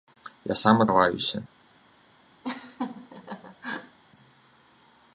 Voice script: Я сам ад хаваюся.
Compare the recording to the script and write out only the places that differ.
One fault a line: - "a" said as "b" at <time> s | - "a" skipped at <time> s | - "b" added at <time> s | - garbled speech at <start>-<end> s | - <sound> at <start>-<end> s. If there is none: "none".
- laugh at 2.4-4.0 s